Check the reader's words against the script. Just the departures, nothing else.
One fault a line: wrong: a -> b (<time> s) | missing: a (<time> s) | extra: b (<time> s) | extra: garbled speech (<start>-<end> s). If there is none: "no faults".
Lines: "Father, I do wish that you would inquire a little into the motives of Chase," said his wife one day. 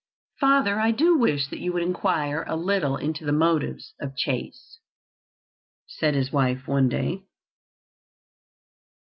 no faults